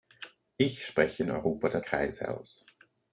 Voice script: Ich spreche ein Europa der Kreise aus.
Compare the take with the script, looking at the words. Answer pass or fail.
pass